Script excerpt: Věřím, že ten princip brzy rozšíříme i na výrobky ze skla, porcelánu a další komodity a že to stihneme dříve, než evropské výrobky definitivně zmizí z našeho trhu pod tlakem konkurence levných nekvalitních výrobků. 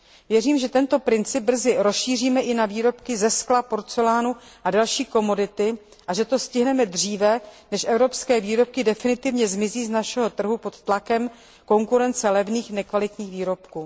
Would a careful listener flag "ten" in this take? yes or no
yes